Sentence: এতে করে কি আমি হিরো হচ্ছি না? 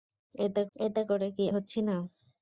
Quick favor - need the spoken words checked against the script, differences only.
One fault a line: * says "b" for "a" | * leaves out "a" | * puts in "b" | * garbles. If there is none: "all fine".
* puts in "এতে"
* leaves out "আমি হিরো"